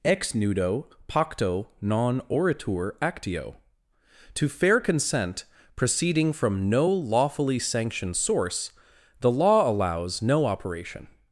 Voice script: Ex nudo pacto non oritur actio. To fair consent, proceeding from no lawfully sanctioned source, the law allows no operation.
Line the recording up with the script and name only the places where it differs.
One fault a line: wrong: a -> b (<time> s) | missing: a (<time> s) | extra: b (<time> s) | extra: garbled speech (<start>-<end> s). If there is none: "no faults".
no faults